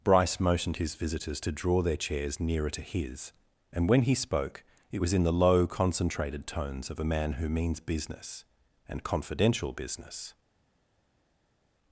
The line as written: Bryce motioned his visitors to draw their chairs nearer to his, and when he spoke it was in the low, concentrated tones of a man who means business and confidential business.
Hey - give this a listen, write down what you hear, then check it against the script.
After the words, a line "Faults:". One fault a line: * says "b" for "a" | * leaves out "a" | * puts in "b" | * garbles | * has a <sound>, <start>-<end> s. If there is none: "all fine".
Bryce motioned his visitors to draw their chairs nearer to his, and when he spoke it was in the low, concentrated tones of a man who means business and confidential business.
Faults:
all fine